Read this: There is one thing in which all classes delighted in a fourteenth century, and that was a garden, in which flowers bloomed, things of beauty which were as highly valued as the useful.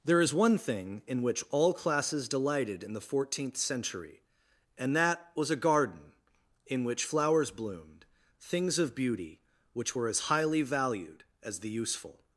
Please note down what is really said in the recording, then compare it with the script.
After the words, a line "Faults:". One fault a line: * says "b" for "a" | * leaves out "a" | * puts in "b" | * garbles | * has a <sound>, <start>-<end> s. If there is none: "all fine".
There is one thing in which all classes delighted in the fourteenth century, and that was a garden, in which flowers bloomed, things of beauty which were as highly valued as the useful.
Faults:
* says "the" for "a"